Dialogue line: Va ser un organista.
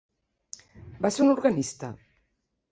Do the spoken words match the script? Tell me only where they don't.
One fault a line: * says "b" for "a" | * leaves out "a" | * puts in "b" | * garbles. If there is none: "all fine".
all fine